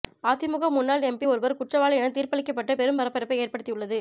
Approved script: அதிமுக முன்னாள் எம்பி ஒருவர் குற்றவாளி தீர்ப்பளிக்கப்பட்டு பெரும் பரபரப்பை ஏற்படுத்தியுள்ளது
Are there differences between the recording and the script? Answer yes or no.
yes